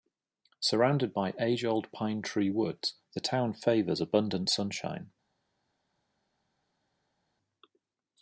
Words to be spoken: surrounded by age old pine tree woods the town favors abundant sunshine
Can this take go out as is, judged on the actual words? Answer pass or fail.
pass